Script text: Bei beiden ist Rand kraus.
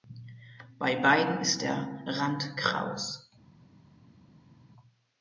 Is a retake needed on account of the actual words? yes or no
yes